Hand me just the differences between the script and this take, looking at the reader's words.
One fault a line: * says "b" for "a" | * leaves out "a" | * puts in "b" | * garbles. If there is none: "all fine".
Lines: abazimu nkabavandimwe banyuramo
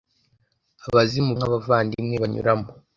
all fine